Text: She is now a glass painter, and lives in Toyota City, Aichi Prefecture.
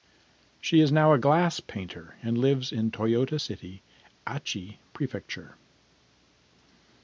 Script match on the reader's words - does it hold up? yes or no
yes